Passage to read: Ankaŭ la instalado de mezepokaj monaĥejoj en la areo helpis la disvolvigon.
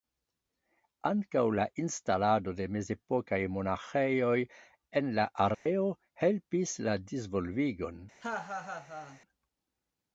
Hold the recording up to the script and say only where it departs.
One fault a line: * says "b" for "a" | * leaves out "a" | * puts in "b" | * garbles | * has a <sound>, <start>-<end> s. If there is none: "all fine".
* has a dropout, 5.5-5.7 s
* has a laugh, 8.2-9.2 s